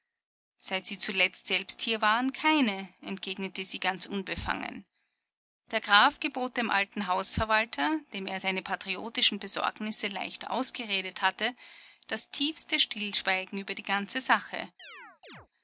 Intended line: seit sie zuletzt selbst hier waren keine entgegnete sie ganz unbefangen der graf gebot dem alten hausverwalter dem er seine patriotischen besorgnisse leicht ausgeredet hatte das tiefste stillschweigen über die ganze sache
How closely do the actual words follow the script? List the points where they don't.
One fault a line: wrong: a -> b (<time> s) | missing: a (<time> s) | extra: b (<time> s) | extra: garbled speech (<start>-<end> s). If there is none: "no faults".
no faults